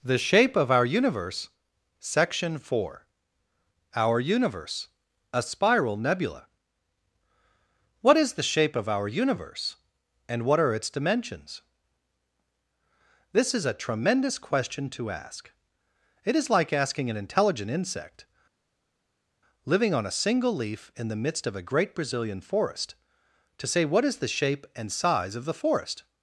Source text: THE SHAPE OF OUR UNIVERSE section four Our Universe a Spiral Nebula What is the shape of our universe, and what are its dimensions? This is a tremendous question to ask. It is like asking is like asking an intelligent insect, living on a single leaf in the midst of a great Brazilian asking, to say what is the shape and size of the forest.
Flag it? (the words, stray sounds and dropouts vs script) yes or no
yes